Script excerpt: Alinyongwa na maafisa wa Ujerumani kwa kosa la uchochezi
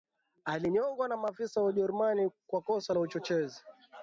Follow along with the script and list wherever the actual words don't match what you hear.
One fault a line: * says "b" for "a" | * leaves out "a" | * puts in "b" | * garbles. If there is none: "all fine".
all fine